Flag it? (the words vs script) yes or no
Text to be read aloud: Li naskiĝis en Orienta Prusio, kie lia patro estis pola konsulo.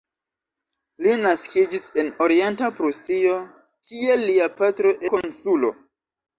yes